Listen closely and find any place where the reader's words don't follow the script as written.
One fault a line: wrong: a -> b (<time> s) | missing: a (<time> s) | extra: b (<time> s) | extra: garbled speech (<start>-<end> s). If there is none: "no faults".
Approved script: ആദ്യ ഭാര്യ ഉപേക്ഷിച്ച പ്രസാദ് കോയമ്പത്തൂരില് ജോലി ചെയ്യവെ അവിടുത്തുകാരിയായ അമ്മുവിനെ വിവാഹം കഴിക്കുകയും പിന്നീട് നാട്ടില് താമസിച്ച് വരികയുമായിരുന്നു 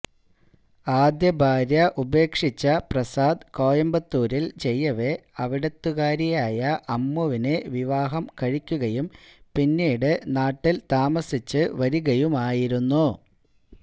missing: ജോലി (4.5 s)